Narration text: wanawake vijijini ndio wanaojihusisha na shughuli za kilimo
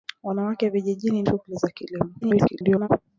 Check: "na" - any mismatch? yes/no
yes